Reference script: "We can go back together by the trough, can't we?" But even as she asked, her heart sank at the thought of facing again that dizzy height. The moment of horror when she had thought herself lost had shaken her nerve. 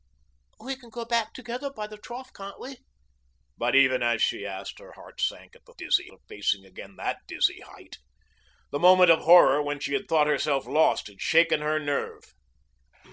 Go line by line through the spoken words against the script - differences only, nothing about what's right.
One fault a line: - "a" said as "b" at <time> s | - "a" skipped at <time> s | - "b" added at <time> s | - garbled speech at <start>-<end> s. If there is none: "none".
- "thought" said as "dizzy" at 5.8 s